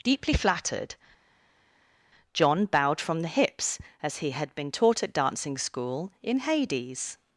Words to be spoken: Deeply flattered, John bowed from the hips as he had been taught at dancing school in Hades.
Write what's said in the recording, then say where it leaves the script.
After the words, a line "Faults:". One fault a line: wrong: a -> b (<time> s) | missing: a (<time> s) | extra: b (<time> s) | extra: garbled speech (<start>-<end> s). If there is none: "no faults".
Deeply flattered, John bowed from the hips as he had been taught at dancing school in Hades.
Faults:
no faults